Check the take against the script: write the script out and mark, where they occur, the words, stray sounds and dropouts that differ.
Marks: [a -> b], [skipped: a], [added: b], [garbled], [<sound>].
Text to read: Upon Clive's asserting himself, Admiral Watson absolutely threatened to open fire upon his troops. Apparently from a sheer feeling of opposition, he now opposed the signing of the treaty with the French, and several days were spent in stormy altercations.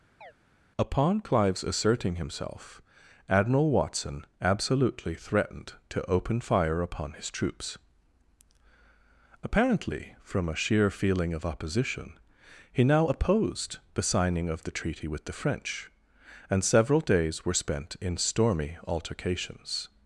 [chirp] Upon Clive's asserting himself, Admiral Watson absolutely threatened to open fire upon his troops. Apparently from a sheer feeling of opposition, he now opposed the signing of the treaty with the French, and several days were spent in stormy altercations.